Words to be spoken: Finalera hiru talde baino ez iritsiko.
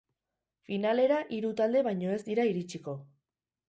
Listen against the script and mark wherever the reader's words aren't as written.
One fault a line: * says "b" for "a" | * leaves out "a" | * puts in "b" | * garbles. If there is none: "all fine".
* puts in "dira"